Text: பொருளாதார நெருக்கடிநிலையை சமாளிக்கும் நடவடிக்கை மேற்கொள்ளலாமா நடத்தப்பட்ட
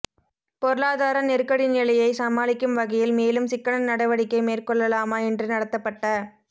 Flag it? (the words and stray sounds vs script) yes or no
yes